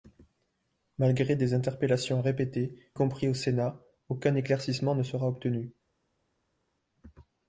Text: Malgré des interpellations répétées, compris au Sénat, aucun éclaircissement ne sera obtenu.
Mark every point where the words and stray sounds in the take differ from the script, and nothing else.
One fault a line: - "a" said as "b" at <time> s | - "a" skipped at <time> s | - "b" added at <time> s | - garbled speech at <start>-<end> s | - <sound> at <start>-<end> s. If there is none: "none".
none